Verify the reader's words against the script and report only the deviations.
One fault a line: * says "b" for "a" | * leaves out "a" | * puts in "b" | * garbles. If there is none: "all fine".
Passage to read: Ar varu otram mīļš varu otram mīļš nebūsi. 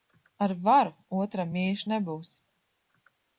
* leaves out "varu otram mīļš"